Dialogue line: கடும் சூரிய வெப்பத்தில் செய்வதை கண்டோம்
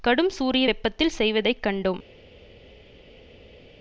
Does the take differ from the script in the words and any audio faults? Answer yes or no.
no